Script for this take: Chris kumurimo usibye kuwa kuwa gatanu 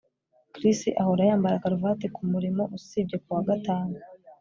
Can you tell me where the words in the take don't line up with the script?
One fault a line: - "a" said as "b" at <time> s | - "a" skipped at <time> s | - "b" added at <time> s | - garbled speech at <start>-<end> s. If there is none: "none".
- "ahora yambara karuvati" added at 1.0 s
- "kuwa" skipped at 3.4 s